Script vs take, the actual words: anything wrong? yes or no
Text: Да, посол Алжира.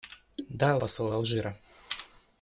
no